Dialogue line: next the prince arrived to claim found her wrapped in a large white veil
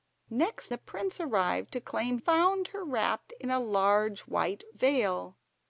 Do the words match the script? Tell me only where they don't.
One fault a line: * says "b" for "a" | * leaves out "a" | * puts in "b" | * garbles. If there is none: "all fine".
all fine